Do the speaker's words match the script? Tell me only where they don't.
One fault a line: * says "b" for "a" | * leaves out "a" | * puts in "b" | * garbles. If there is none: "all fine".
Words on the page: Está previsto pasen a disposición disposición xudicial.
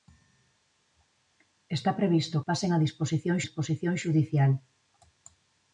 all fine